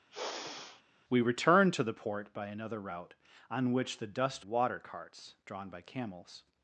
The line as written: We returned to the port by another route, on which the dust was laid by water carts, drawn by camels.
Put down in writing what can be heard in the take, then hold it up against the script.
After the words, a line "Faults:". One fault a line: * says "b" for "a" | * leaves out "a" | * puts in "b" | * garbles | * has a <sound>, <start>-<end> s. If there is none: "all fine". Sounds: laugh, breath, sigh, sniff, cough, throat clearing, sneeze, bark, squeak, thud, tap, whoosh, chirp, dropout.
We returned to the port by another route, on which the dust water carts, drawn by camels.
Faults:
* has a sigh, 0.1-0.8 s
* leaves out "was laid by"